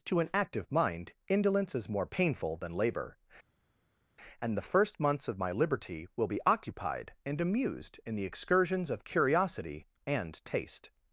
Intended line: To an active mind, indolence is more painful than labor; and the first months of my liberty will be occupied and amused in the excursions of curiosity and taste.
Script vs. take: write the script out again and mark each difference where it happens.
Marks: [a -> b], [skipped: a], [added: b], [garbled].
To an active mind, indolence is more painful than labor; and the first months of my liberty will be occupied and amused in the excursions of curiosity and taste.